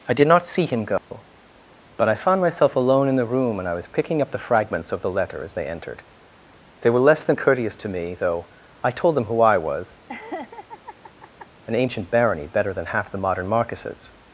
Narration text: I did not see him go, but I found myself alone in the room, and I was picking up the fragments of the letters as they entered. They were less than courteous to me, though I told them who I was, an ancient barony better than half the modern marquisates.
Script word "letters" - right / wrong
wrong